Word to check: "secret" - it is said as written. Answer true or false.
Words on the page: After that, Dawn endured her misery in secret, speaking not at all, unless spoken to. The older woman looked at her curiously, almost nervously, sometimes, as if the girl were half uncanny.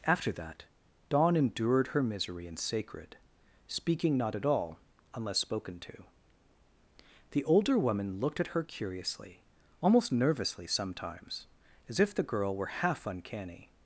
false